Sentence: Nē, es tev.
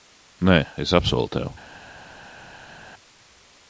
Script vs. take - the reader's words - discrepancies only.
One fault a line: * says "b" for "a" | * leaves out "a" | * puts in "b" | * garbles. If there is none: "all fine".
* puts in "apsolu"